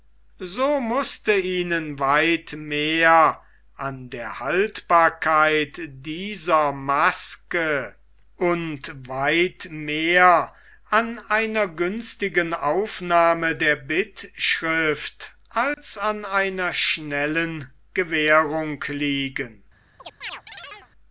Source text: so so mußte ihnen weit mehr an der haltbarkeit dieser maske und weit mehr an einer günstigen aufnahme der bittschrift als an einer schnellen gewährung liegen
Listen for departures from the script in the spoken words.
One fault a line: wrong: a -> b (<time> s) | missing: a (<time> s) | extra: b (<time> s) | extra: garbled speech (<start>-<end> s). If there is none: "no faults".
missing: so (0.8 s)